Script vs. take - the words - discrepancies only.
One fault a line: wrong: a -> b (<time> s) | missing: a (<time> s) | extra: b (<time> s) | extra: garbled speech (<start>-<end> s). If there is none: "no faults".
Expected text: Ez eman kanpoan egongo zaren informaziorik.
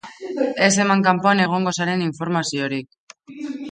no faults